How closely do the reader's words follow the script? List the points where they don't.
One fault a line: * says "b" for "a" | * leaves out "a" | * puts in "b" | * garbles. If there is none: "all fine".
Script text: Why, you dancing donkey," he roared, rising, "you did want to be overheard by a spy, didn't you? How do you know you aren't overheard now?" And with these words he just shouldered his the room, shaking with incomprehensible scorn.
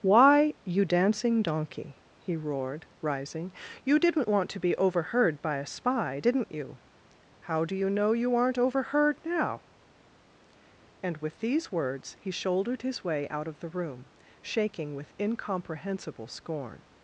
* says "didn't" for "did"
* leaves out "just"
* puts in "way out of"